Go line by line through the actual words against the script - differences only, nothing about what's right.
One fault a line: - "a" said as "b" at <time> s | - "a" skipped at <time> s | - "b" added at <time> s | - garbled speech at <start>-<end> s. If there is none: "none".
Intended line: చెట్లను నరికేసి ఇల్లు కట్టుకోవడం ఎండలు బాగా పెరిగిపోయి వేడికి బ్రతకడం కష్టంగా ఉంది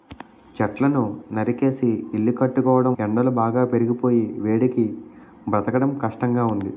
none